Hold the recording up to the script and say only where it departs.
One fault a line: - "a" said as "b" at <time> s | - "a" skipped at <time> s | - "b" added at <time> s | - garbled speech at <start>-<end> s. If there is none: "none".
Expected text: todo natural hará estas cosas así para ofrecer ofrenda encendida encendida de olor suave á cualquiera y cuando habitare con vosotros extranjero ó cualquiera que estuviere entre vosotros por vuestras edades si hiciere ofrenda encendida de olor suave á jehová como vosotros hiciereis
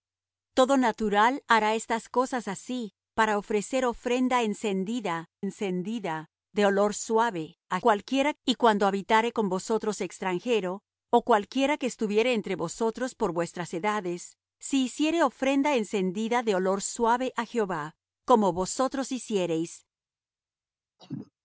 none